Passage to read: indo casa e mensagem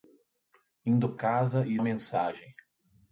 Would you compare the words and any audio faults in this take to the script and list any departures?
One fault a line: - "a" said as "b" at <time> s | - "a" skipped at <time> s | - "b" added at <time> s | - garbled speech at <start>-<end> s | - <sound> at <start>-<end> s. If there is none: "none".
none